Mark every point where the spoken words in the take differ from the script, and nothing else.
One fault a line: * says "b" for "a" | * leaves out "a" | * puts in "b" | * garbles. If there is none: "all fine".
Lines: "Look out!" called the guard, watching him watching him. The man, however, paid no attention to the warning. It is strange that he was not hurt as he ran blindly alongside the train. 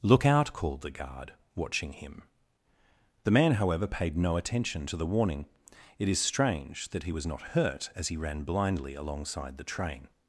* leaves out "watching him"